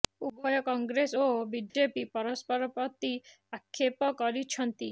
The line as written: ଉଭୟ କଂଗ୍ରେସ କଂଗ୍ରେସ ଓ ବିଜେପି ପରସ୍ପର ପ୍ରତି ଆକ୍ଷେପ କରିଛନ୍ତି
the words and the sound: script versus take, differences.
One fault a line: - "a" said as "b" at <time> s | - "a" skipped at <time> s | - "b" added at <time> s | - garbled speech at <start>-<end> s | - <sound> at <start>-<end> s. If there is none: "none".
- "କଂଗ୍ରେସ" skipped at 1.2 s
- dropout at 1.7-1.7 s